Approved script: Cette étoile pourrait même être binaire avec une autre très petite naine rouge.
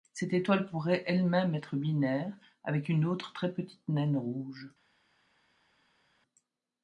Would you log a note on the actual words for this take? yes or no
yes